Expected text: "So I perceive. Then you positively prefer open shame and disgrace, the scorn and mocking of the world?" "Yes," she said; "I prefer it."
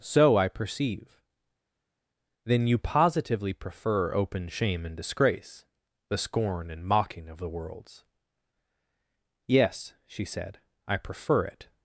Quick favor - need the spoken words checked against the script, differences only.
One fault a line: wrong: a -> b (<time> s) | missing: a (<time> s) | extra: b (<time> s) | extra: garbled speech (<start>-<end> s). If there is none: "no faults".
wrong: world -> worlds (7.5 s)